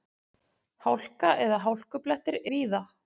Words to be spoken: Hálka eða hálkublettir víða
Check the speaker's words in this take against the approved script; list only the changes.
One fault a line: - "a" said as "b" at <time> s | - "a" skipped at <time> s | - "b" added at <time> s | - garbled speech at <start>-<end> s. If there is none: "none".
none